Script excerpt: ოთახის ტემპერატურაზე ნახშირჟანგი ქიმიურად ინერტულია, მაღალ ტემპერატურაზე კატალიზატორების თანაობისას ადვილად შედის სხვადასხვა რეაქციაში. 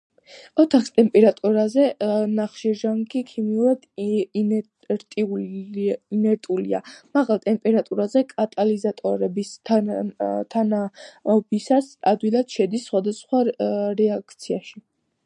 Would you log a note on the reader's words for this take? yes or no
no